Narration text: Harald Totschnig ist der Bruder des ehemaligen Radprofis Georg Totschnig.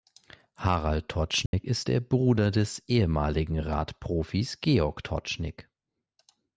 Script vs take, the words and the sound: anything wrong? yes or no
yes